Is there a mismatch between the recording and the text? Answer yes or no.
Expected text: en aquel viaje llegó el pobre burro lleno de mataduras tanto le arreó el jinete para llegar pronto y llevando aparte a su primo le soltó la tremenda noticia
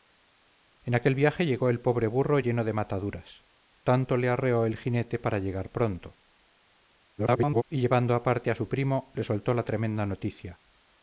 yes